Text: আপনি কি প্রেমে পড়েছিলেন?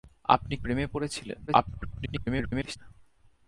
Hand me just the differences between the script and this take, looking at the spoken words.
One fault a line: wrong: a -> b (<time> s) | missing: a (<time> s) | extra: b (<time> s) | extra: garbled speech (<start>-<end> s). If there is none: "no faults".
missing: কি (0.6 s)
extra: garbled speech (1.5-2.8 s)